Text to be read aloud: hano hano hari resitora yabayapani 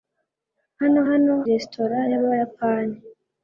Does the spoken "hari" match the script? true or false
false